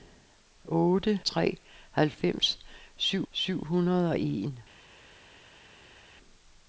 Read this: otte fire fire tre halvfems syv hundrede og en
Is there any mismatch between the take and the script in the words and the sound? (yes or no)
yes